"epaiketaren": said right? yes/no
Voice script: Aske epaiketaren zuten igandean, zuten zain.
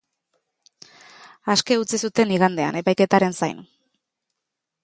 no